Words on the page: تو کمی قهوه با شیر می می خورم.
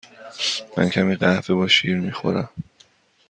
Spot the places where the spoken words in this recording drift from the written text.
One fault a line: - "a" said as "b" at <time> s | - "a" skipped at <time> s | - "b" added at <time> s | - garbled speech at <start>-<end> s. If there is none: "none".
- "تو" said as "من" at 0.8 s
- "می" skipped at 2.1 s